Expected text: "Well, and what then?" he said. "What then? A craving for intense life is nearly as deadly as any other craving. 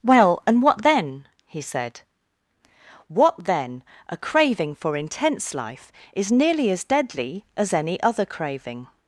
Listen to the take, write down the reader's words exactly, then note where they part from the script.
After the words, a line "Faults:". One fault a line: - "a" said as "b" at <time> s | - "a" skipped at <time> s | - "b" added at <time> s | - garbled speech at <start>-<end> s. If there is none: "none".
"Well, and what then?" he said. "What then? A craving for intense life is nearly as deadly as any other craving.
Faults:
none